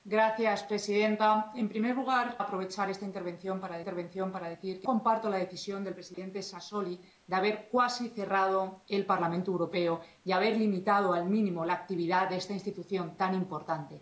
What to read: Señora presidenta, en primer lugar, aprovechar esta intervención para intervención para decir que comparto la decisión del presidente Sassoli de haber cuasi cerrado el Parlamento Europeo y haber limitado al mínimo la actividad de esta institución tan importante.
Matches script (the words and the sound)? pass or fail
fail